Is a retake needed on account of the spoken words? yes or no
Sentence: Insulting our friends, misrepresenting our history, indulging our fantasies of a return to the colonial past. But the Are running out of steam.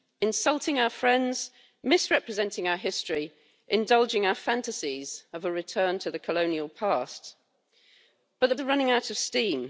no